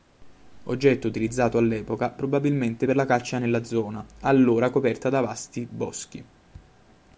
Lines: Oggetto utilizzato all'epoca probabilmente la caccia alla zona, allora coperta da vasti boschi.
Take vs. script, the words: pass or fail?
fail